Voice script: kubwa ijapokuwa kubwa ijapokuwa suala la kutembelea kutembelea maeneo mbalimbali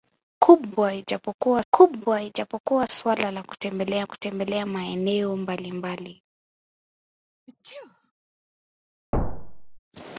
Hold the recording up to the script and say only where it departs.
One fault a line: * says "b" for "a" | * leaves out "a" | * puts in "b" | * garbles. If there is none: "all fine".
all fine